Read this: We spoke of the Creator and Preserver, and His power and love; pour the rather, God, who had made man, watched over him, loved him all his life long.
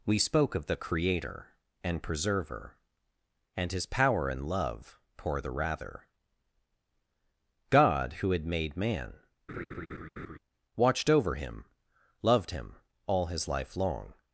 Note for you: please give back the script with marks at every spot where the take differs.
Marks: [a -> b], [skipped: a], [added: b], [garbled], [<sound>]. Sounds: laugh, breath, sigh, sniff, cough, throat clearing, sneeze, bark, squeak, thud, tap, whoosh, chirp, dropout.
We spoke of the Creator and Preserver, and His power and love; pour the rather, God, who had made man, [laugh] watched over him, loved him all his life long.